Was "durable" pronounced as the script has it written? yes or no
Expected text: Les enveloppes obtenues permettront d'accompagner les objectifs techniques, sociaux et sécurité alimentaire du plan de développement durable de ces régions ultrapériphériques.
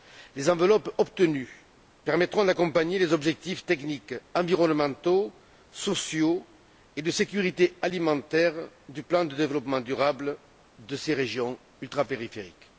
yes